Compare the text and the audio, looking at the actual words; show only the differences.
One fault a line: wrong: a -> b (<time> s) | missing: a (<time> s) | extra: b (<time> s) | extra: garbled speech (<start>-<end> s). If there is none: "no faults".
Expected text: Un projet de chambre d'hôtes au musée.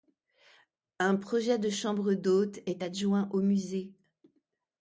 extra: est adjoint (2.7 s)